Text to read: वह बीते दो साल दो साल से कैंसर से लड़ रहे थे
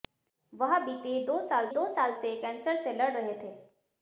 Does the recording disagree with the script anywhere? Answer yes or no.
no